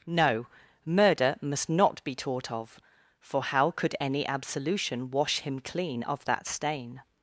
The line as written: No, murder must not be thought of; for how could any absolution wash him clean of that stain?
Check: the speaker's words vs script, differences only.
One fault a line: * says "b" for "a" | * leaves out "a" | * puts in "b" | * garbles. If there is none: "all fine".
* says "taught" for "thought"